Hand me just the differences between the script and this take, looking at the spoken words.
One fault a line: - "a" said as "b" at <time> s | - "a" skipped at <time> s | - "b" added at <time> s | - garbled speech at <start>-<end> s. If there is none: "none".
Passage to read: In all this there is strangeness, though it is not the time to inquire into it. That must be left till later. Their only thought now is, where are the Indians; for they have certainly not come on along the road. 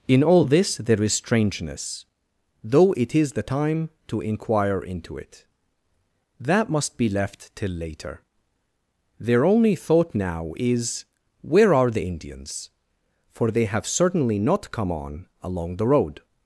- "not" skipped at 3.3 s